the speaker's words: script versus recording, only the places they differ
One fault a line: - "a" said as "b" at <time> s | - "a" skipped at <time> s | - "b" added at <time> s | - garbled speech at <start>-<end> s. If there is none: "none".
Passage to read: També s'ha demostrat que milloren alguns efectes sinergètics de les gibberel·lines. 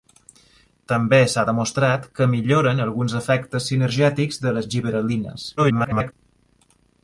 - garbled speech at 5.6-6.1 s